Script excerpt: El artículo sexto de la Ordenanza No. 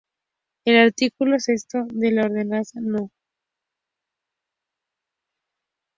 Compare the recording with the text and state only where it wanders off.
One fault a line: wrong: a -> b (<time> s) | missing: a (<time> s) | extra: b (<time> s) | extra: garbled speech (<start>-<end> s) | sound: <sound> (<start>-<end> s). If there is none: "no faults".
no faults